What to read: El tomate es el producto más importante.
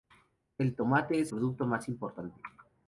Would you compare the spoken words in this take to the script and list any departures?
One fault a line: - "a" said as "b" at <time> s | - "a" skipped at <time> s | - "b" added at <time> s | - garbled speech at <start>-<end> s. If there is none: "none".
- "el" skipped at 1.3 s